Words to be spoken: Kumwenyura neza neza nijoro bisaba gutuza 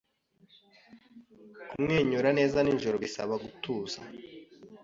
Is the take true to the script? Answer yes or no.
no